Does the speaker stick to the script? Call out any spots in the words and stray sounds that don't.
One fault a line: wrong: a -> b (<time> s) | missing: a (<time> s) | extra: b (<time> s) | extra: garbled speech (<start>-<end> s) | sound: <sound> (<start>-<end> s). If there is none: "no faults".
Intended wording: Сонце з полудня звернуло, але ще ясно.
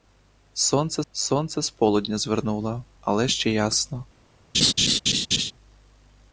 extra: сонце (1.1 s)
sound: laugh (4.5-5.5 s)